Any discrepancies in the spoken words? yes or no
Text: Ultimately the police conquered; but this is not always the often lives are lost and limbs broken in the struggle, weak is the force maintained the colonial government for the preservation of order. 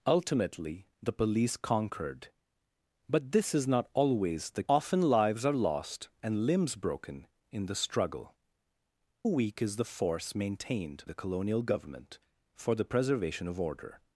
no